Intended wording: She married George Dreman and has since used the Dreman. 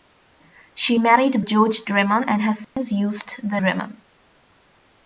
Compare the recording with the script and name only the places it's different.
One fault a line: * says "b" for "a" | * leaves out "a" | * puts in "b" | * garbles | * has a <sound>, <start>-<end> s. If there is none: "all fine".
* has a dropout, 2.6-2.8 s